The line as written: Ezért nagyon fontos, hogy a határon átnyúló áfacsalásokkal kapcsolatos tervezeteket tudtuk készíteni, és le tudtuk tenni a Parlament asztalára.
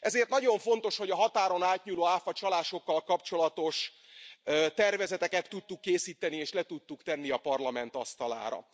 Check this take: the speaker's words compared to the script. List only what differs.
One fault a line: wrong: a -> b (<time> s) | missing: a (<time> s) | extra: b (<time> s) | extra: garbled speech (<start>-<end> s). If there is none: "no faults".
no faults